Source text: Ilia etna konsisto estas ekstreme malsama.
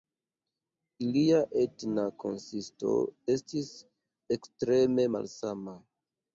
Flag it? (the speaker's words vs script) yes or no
yes